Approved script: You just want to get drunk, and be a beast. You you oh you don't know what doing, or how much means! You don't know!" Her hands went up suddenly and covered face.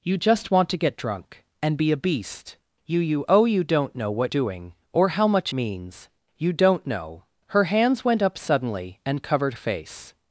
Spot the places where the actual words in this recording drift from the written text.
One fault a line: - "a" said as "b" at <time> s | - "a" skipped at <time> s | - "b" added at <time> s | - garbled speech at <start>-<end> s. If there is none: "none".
none